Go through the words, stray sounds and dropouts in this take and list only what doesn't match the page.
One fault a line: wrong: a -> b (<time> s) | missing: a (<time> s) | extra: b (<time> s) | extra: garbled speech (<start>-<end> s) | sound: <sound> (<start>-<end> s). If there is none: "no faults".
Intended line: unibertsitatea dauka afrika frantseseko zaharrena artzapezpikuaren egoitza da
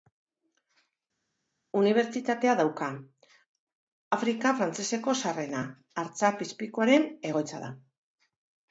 no faults